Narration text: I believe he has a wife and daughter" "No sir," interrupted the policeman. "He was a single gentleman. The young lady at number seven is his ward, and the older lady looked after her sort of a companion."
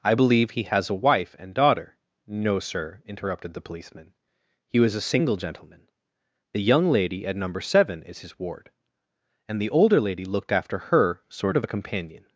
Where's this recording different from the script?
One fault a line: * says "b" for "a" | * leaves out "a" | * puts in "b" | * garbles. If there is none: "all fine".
all fine